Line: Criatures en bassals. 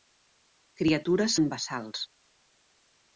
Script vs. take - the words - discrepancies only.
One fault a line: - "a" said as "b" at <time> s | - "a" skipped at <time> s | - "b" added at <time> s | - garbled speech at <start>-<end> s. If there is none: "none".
none